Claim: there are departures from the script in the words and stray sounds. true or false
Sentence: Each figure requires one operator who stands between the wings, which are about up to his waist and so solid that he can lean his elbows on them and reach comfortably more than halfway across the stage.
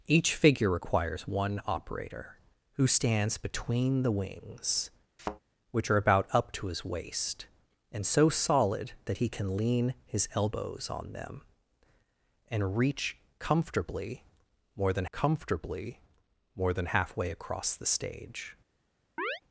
true